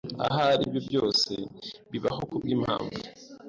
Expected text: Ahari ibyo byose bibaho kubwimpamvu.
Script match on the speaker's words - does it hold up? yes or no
yes